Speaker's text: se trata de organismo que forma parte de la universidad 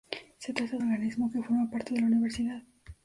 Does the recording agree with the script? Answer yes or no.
yes